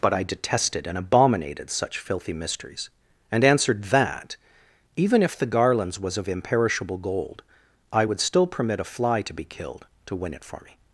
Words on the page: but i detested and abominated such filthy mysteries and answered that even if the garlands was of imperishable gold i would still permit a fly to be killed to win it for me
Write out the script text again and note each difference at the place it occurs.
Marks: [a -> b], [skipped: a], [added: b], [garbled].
but i detested and abominated such filthy mysteries and answered that even if the garlands was of imperishable gold i would still permit a fly to be killed to win it for me